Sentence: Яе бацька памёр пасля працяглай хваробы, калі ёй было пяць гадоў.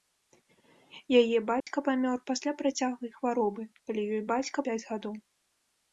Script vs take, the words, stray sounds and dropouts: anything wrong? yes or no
yes